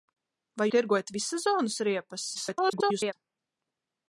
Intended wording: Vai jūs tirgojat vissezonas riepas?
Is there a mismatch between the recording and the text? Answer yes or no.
yes